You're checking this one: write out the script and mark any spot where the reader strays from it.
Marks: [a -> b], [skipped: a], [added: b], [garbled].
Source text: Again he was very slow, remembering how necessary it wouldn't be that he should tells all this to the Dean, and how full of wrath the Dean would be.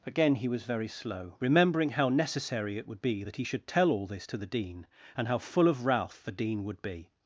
Again he was very slow, remembering how necessary it [wouldn't -> would] be that he should [tells -> tell] all this to the Dean, and how full of wrath the Dean would be.